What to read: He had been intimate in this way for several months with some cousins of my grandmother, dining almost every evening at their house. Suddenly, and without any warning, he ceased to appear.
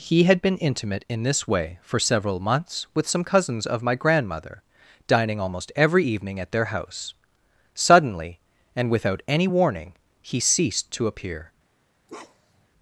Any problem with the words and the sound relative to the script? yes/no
yes